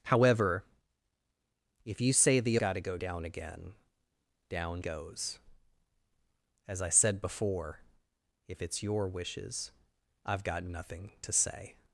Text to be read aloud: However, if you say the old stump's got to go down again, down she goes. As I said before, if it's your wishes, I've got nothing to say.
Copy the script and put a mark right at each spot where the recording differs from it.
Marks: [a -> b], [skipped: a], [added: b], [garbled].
However, if you say the [skipped: old stump's] got to go down again, down [skipped: she] goes. As I said before, if it's your wishes, I've got nothing to say.